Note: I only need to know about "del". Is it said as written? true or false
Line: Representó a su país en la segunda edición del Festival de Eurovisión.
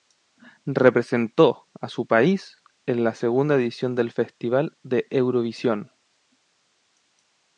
true